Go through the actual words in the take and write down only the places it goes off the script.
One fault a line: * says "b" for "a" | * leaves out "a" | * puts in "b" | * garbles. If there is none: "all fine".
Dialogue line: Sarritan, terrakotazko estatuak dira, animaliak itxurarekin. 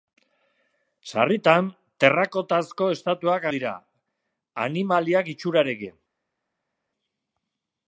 all fine